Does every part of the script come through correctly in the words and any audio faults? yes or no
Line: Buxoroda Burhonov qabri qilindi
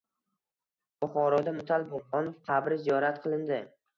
no